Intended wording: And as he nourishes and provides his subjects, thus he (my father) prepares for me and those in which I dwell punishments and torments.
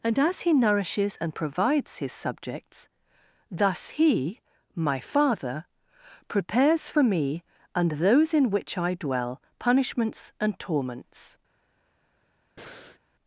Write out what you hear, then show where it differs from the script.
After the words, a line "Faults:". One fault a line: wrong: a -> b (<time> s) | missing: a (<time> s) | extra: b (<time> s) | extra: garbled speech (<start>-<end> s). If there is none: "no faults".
And as he nourishes and provides his subjects, thus he (my father) prepares for me and those in which I dwell punishments and torments.
Faults:
no faults